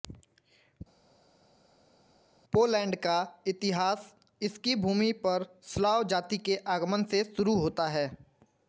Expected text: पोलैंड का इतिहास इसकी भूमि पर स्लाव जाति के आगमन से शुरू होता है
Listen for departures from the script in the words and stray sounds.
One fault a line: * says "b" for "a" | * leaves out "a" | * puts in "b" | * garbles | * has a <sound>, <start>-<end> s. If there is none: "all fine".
all fine